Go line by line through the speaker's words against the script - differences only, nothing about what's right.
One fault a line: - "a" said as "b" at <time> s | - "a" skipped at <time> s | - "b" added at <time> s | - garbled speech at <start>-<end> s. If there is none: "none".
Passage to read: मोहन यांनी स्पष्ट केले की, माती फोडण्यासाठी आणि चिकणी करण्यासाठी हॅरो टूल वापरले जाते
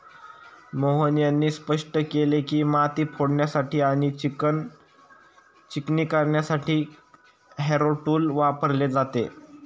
none